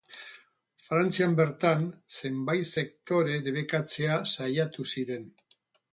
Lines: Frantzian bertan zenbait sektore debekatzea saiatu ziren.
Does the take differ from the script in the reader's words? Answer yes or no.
no